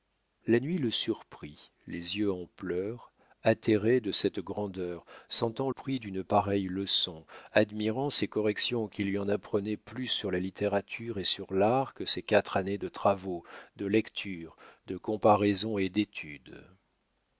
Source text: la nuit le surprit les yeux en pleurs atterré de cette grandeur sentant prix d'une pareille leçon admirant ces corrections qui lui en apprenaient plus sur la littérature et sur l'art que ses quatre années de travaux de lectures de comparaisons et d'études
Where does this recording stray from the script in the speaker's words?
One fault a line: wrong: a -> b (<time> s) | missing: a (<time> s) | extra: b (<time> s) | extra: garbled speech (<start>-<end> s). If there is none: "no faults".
no faults